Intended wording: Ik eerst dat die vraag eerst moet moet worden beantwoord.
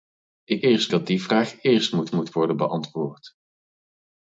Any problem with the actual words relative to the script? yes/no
no